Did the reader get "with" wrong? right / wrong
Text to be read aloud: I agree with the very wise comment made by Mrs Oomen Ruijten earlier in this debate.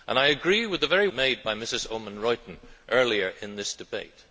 right